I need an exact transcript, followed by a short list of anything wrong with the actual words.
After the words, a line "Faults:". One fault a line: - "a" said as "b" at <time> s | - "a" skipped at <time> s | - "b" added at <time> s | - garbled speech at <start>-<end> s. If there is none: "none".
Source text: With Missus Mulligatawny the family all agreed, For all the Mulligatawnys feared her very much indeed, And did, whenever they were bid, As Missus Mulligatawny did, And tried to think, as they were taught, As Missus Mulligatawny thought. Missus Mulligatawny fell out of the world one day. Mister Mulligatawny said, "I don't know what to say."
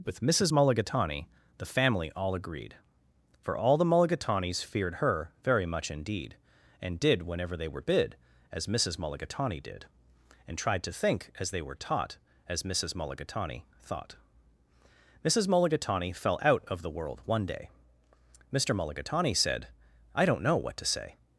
With Missus Mulligatawny the family all agreed, For all the Mulligatawnys feared her very much indeed, And did, whenever they were bid, As Missus Mulligatawny did, And tried to think, as they were taught, As Missus Mulligatawny thought. Missus Mulligatawny fell out of the world one day. Mister Mulligatawny said, "I don't know what to say."
Faults:
none